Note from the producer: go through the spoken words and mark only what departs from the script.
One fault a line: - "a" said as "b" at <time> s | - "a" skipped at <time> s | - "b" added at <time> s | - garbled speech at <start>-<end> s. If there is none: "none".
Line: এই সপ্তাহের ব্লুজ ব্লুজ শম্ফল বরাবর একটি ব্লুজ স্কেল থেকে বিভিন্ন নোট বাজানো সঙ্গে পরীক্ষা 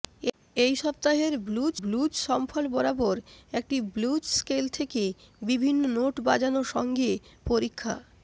none